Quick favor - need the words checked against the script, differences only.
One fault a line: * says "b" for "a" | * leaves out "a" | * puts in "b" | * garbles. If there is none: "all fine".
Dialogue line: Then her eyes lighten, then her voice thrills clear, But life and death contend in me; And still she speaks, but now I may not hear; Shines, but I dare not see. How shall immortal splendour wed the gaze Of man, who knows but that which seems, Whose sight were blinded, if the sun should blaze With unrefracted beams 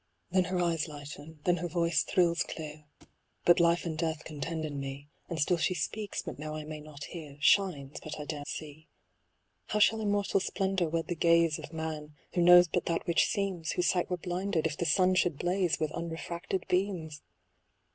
* leaves out "not"